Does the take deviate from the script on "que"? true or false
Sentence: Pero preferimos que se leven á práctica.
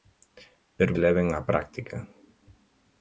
true